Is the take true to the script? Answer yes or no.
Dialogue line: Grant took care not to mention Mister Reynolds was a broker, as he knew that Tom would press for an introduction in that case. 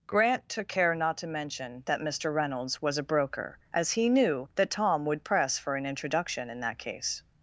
no